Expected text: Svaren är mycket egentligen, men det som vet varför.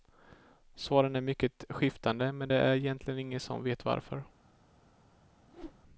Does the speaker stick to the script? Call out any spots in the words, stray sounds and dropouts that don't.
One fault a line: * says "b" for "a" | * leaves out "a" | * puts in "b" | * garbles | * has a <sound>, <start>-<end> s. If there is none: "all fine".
* says "skiftande" for "egentligen"
* puts in "är egentligen ingen"
* has a whoosh, 5.5-5.8 s